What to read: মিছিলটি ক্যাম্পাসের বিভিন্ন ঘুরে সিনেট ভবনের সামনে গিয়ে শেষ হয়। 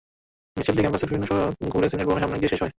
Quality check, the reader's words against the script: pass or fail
fail